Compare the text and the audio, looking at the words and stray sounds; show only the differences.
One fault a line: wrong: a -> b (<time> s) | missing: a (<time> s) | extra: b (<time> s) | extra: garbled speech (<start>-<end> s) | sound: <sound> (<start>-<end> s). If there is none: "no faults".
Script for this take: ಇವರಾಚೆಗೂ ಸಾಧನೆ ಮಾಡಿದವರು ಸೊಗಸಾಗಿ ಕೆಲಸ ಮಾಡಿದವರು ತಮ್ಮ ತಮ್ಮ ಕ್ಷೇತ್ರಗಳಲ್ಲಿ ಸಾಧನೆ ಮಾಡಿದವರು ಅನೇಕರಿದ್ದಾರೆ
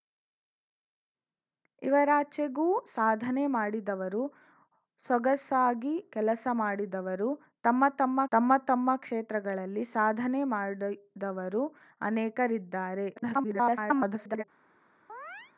extra: ತಮ್ಮ ತಮ್ಮ (8.3 s)
extra: garbled speech (13.2-14.4 s)
sound: chirp (15.1-15.5 s)